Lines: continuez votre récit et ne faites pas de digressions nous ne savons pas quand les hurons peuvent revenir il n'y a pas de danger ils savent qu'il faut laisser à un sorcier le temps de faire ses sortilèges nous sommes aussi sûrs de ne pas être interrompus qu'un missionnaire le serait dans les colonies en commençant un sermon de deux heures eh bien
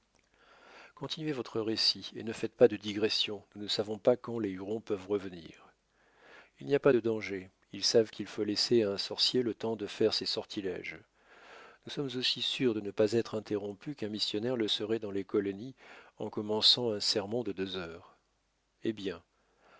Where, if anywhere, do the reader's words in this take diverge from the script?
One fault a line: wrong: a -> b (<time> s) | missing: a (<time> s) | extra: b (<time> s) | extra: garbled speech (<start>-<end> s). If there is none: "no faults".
no faults